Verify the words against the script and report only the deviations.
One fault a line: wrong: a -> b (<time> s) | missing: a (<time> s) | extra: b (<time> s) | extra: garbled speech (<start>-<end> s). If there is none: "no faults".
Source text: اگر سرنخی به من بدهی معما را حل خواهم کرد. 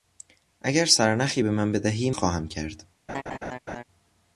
missing: معما را حل (2.1 s)